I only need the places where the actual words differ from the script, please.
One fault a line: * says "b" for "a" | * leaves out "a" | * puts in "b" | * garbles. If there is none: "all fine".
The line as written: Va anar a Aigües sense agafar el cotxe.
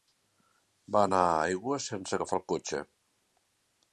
all fine